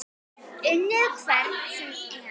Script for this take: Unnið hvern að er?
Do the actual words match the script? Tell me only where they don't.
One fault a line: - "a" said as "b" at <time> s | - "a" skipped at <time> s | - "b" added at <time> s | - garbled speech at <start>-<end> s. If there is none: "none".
- "að" said as "sem" at 1.8 s